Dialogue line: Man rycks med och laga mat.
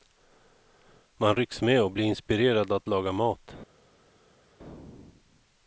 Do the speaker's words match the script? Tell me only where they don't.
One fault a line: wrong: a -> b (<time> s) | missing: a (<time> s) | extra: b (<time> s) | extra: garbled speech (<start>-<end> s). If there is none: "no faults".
extra: blir inspirerad att (1.9 s)